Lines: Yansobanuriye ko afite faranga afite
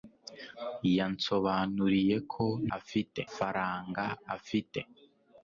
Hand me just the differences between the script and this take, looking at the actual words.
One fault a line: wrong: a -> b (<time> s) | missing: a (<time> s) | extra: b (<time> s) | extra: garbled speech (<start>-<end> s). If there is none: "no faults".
no faults